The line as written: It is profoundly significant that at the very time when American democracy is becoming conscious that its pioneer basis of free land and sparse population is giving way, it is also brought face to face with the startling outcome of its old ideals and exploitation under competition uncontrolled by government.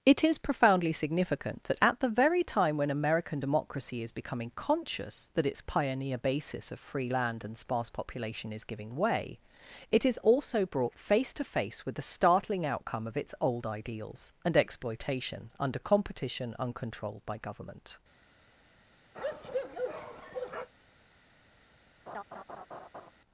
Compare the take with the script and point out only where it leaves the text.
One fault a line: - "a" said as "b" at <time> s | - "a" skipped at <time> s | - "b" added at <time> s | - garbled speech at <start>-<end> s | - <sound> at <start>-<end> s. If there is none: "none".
- bark at 19.1-20.7 s
- laugh at 22.1-23.1 s